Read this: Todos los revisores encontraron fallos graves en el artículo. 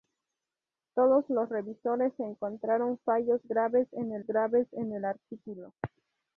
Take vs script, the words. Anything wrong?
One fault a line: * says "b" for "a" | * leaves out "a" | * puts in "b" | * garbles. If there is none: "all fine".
* puts in "graves en el"